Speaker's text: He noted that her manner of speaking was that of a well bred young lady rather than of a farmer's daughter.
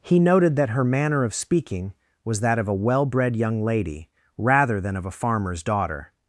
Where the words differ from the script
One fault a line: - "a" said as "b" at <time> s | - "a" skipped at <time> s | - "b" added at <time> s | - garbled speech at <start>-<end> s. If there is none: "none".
none